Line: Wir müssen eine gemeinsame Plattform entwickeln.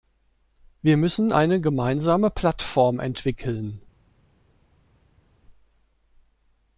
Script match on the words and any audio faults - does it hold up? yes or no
yes